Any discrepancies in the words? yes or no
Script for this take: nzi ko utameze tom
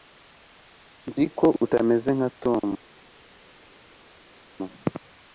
yes